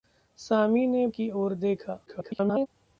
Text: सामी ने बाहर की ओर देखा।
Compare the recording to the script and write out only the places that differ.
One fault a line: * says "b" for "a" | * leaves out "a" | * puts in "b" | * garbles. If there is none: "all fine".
* leaves out "बाहर"
* garbles